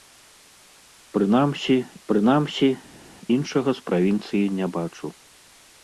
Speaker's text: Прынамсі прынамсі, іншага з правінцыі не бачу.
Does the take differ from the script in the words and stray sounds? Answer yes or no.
no